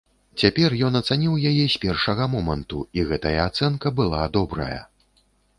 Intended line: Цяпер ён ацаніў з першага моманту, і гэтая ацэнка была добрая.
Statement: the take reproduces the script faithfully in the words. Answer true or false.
false